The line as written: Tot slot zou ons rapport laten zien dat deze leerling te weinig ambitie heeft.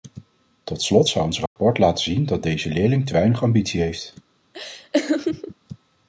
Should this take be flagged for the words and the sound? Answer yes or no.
yes